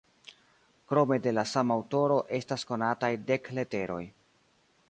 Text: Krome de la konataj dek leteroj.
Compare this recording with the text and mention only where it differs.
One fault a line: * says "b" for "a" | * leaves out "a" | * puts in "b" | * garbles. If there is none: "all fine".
* puts in "sama aŭtoro estas"